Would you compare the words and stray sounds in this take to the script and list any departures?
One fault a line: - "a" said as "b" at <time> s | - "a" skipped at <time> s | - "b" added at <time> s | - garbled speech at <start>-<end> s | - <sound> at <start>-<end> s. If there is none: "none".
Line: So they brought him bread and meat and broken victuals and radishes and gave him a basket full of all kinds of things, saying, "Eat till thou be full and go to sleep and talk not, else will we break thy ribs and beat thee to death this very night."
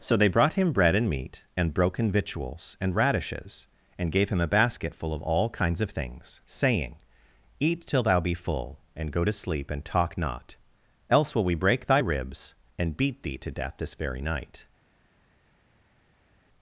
none